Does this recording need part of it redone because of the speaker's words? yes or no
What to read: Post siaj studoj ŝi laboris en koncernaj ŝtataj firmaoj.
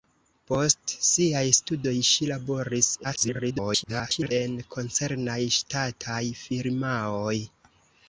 yes